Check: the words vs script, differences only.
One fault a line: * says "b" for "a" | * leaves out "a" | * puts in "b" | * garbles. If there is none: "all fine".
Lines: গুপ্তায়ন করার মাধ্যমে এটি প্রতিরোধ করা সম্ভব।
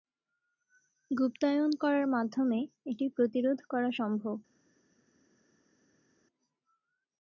all fine